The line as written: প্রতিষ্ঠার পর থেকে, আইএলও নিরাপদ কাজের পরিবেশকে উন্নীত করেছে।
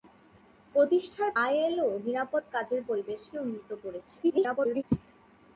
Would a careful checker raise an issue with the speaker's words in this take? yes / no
yes